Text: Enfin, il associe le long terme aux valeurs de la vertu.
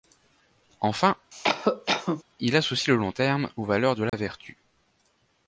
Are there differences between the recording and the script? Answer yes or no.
no